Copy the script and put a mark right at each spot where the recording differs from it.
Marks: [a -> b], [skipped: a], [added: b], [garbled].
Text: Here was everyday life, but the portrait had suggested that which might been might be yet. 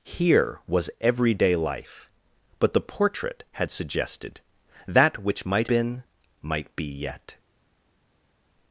Here was everyday life, but the portrait had suggested that which might been might be yet.